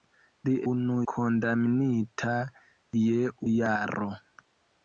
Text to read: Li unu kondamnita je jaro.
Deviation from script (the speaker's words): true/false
false